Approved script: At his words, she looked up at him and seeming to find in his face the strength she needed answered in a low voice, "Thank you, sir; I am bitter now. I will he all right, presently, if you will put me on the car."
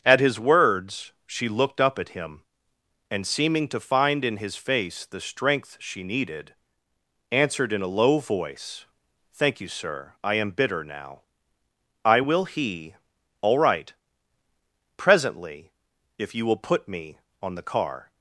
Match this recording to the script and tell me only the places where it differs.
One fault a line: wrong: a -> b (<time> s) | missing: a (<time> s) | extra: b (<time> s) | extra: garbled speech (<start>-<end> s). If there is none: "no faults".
no faults